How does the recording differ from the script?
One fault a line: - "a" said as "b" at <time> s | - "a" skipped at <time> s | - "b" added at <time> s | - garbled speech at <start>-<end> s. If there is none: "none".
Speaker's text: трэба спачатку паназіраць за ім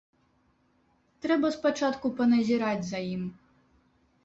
none